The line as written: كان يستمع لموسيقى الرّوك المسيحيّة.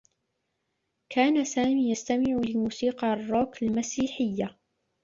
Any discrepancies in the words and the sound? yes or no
yes